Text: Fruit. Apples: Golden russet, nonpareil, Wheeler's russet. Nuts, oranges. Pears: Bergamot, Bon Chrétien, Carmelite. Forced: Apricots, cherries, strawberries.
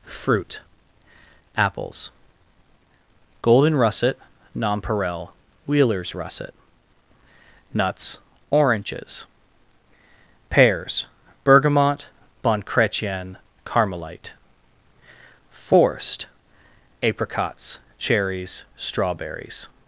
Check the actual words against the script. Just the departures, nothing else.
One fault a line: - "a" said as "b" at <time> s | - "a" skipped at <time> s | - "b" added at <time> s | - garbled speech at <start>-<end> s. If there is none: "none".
none